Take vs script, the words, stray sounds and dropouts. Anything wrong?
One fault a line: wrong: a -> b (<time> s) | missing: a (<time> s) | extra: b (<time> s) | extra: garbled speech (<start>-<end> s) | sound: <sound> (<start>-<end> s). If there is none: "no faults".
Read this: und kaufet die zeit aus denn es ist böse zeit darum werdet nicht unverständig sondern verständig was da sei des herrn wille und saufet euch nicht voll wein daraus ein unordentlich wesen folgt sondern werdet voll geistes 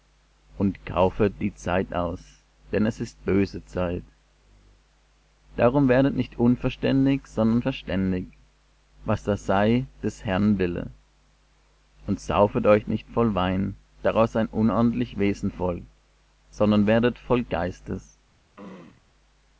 sound: throat clearing (18.6-19.0 s)